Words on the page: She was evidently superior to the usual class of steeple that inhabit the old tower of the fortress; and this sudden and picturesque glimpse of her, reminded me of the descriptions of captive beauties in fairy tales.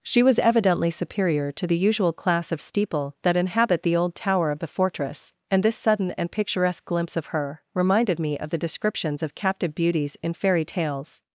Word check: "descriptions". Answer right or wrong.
right